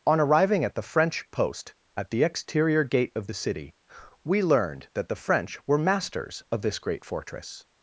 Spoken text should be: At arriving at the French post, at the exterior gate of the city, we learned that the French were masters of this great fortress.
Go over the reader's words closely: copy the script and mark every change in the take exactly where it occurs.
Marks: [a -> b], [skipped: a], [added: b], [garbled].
[At -> On] arriving at the French post, at the exterior gate of the city, we learned that the French were masters of this great fortress.